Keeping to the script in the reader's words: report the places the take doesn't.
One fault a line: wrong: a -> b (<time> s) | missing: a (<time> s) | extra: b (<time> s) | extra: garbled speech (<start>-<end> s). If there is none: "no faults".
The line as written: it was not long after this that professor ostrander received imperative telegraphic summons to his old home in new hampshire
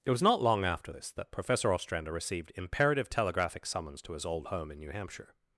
no faults